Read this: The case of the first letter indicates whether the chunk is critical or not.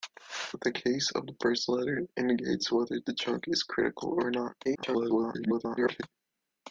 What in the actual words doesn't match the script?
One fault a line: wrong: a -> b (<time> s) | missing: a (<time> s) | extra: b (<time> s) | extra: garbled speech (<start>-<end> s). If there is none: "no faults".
extra: garbled speech (4.6-6.0 s)